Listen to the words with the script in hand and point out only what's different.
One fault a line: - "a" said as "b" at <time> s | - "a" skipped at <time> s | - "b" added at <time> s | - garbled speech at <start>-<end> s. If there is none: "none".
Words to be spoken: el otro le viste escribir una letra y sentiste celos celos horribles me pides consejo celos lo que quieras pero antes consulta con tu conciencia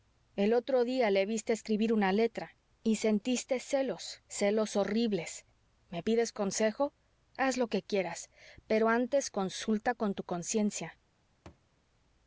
- "día" added at 0.8 s
- "celos" said as "haz" at 7.3 s